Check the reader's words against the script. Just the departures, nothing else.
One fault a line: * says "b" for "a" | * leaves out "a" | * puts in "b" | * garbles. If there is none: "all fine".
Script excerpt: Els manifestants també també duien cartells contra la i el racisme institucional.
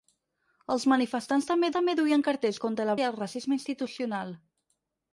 all fine